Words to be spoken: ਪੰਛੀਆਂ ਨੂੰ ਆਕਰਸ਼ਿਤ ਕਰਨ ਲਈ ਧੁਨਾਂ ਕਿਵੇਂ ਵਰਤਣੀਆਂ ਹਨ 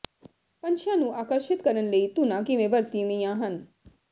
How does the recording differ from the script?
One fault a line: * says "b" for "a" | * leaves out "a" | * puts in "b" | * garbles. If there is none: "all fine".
all fine